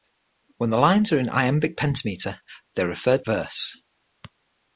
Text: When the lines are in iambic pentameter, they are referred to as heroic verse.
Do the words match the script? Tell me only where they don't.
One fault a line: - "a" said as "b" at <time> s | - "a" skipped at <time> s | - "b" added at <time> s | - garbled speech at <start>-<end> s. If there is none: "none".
- "to as heroic" skipped at 3.3 s